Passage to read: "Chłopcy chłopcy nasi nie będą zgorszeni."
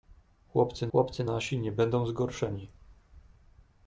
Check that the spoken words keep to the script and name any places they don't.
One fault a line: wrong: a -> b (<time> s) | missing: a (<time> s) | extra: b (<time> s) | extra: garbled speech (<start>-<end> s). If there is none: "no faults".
no faults